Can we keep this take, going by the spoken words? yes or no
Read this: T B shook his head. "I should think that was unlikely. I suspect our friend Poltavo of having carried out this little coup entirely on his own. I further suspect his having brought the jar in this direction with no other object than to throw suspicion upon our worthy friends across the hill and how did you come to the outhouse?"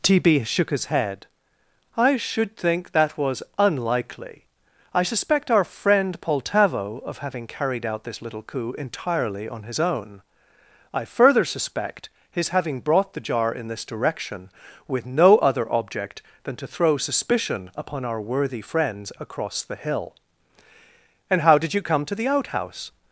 yes